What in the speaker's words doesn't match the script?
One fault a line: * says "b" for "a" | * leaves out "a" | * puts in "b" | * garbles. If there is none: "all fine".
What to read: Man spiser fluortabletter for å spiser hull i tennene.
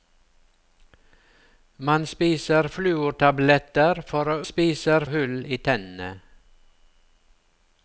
all fine